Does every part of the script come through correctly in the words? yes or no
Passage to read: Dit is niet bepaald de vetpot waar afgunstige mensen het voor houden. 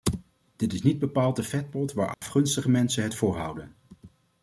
yes